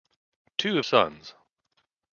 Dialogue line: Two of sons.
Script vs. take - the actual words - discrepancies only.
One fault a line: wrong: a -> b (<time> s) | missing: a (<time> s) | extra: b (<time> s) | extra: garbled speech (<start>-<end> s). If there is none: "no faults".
no faults